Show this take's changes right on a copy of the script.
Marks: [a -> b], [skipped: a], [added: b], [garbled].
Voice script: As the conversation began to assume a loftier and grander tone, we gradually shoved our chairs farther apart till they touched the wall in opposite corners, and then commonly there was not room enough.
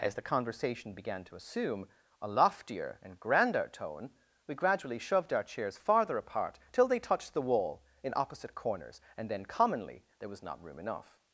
As the conversation began to assume a loftier and grander tone, we gradually shoved our chairs farther apart till they touched the wall in opposite corners, and then commonly there was not room enough.